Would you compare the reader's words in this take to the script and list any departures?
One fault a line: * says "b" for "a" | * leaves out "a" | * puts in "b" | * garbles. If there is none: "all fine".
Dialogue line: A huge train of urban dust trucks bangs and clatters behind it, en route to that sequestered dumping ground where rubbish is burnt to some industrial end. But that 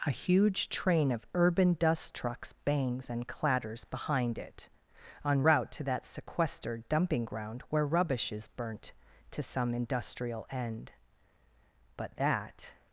all fine